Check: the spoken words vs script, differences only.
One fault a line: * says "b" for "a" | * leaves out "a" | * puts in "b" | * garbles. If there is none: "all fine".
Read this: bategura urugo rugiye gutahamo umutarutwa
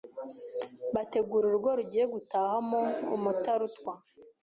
all fine